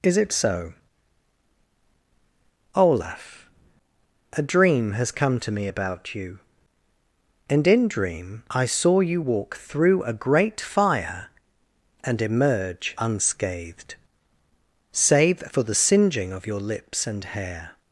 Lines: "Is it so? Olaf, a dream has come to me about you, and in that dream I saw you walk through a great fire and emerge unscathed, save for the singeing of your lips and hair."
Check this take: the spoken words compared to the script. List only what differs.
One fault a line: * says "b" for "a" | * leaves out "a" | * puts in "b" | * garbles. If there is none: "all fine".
* leaves out "that"